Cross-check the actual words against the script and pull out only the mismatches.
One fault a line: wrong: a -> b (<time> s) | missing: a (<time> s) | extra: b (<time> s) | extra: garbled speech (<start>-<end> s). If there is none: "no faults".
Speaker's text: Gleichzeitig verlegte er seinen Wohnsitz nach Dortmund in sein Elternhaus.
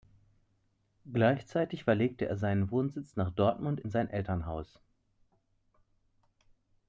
no faults